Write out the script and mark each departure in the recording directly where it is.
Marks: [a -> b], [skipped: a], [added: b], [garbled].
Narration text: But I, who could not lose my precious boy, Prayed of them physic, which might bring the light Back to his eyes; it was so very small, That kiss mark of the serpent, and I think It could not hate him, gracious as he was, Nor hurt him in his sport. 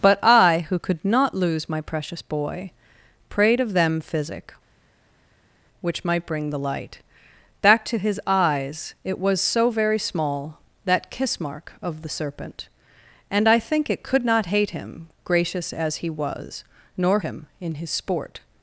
But I, who could not lose my precious boy, Prayed of them physic, which might bring the light Back to his eyes; it was so very small, That kiss mark of the serpent, and I think It could not hate him, gracious as he was, Nor [skipped: hurt] him in his sport.